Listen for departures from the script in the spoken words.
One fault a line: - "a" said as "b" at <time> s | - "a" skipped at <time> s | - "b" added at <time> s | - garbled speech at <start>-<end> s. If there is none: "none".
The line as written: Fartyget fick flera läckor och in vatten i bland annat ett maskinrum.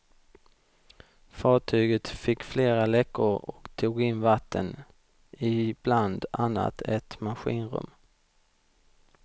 - "tog" added at 3.8 s